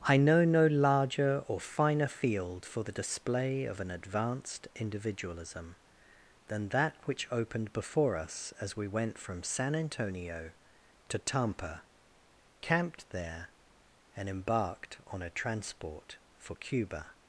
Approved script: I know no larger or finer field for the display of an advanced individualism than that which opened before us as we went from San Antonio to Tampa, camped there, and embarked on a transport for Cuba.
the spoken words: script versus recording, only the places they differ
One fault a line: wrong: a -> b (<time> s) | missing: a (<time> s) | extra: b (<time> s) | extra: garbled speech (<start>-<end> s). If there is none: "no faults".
no faults